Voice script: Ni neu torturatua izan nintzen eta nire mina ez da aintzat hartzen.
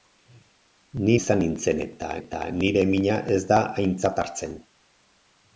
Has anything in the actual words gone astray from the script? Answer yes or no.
yes